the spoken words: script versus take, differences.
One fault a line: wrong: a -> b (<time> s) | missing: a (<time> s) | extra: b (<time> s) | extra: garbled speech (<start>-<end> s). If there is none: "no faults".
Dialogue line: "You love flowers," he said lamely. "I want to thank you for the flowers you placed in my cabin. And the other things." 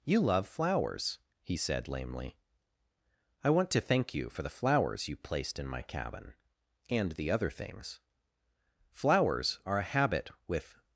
extra: Flowers are a habit with (8.9 s)